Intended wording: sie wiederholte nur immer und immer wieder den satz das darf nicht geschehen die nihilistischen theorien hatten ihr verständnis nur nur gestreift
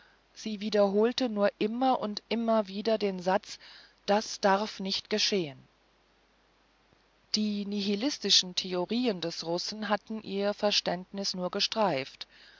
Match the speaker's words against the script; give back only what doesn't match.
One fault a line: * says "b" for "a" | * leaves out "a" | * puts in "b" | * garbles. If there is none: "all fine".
* puts in "des russen"
* leaves out "nur"